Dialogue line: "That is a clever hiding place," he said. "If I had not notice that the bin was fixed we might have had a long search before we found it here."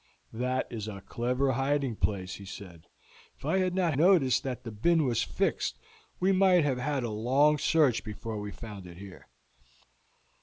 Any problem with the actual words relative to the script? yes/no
no